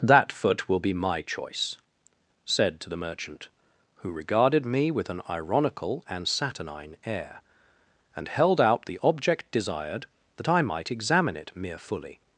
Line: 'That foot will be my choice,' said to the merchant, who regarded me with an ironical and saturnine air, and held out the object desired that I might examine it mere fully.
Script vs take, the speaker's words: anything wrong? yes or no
no